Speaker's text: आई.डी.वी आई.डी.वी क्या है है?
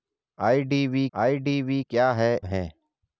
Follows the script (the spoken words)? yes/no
yes